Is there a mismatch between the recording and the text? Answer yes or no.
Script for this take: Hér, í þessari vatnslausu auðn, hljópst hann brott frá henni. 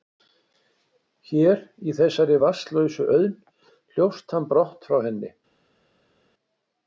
no